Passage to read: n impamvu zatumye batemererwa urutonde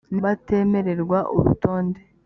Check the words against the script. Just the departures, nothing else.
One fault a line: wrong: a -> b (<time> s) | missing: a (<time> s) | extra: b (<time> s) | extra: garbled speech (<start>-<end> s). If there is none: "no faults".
missing: impamvu zatumye (0.2 s)